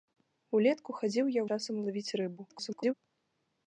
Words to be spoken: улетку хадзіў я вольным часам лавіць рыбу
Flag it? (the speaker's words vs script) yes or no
yes